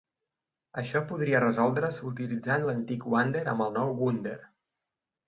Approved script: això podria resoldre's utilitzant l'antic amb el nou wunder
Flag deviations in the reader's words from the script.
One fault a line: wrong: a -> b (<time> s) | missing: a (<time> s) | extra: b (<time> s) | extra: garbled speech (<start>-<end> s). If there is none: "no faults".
extra: wander (3.2 s)